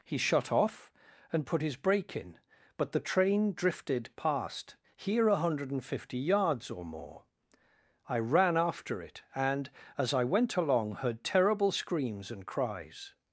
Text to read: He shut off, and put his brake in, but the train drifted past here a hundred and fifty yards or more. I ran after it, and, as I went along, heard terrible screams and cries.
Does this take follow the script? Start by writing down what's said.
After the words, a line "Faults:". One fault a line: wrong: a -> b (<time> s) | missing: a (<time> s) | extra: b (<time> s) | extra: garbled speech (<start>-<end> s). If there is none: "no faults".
He shut off, and put his brake in, but the train drifted past here a hundred and fifty yards or more. I ran after it, and, as I went along, heard terrible screams and cries.
Faults:
no faults